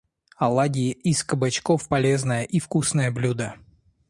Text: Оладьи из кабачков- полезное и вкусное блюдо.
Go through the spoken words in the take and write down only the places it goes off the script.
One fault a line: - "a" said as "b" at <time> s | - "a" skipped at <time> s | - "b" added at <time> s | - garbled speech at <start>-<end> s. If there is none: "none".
none